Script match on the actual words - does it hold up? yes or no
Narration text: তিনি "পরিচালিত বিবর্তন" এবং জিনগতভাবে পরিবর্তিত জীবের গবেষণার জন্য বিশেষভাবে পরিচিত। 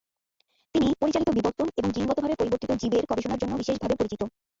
yes